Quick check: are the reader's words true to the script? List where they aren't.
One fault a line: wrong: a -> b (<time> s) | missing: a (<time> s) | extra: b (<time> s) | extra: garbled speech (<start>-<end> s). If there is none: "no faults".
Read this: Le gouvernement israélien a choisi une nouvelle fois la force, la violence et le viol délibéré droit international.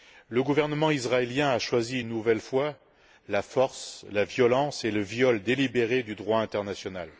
extra: du (6.0 s)